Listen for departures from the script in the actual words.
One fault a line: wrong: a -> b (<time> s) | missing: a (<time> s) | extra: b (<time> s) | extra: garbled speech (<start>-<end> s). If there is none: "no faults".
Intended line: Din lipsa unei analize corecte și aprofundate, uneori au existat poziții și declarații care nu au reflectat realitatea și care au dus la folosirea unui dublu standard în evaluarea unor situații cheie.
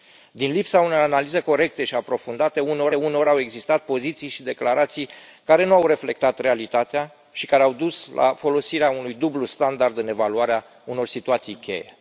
extra: uneori (2.9 s)